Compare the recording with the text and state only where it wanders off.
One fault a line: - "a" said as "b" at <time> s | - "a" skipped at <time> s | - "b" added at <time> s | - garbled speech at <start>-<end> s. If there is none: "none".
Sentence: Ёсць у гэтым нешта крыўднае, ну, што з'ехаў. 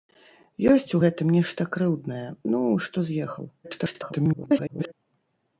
- garbled speech at 3.6-4.9 s